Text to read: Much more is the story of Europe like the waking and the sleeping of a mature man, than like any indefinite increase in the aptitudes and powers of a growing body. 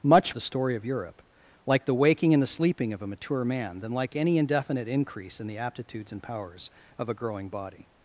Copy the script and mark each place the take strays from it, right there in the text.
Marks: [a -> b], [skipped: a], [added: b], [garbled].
Much [skipped: more is] the story of Europe like the waking and the sleeping of a mature man, than like any indefinite increase in the aptitudes and powers of a growing body.